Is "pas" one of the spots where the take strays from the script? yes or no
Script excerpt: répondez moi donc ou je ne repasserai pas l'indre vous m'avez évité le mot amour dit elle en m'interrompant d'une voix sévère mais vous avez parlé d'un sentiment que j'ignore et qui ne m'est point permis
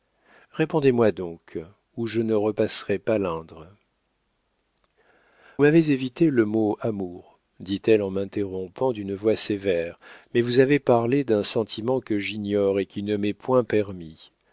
no